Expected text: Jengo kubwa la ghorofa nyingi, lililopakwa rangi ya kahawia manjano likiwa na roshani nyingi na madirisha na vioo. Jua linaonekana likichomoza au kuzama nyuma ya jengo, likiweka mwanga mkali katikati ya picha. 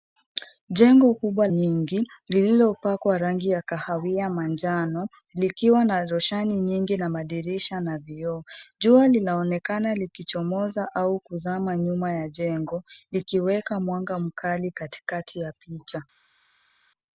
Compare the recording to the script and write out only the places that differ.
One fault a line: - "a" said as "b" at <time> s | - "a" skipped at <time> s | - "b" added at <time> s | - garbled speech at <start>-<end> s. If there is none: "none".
- "la ghorofa" skipped at 1.5 s